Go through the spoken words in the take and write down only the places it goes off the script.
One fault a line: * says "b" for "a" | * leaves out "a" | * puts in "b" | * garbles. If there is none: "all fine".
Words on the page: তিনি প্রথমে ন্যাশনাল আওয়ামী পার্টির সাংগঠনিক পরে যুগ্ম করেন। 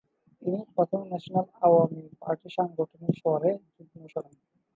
all fine